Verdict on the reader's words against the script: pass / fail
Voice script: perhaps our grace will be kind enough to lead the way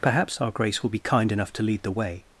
pass